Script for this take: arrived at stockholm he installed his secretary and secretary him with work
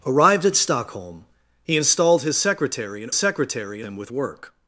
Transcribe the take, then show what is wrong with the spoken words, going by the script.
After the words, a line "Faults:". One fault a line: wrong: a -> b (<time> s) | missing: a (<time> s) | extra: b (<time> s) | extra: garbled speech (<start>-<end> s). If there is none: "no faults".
arrived at stockholm he installed his secretary and secretary him with work
Faults:
no faults